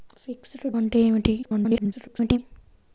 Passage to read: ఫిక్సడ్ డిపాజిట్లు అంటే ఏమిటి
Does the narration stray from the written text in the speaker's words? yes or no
yes